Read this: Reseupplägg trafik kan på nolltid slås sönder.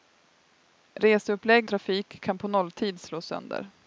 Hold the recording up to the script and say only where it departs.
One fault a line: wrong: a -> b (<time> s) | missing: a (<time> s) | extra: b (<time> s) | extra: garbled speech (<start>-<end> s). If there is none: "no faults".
no faults